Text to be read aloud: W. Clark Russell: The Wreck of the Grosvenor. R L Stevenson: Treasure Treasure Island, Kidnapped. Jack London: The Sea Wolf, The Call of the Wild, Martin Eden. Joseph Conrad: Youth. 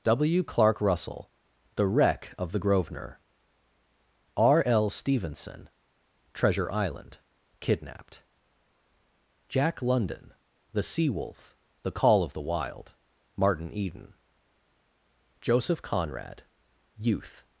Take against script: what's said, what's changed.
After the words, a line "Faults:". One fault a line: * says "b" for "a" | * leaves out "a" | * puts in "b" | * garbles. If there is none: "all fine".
W. Clark Russell: The Wreck of the Grosvenor. R L Stevenson: Treasure Island, Kidnapped. Jack London: The Sea Wolf, The Call of the Wild, Martin Eden. Joseph Conrad: Youth.
Faults:
* leaves out "Treasure"